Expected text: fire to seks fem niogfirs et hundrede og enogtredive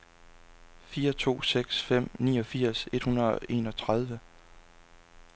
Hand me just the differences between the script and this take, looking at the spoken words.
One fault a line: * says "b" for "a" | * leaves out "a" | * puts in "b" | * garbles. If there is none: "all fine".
all fine